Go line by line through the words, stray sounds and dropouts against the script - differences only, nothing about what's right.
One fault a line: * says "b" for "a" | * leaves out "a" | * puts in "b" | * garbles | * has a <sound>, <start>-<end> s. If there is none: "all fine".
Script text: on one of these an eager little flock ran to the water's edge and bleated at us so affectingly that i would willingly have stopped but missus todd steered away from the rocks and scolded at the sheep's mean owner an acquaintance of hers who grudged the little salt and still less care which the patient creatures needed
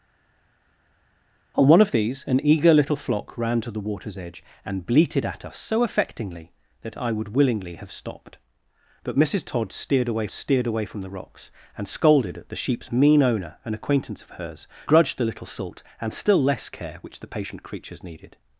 * puts in "steered away"
* leaves out "who"